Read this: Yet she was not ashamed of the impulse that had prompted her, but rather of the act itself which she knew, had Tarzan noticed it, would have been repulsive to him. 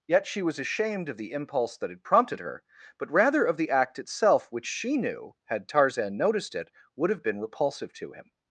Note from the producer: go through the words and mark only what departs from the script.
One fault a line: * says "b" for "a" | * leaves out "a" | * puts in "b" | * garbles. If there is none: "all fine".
* leaves out "not"